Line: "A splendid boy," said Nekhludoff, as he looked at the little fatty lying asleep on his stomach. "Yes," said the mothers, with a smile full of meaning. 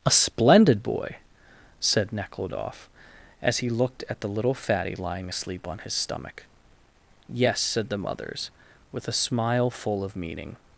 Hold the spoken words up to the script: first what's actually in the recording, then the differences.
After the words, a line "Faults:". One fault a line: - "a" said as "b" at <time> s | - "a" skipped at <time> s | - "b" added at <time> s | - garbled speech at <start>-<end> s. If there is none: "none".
"A splendid boy," said Nekhludoff, as he looked at the little fatty lying asleep on his stomach. "Yes," said the mothers, with a smile full of meaning.
Faults:
none